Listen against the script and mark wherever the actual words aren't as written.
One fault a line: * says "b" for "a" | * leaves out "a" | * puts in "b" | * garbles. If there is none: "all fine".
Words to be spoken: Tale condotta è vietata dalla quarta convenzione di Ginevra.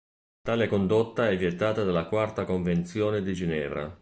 all fine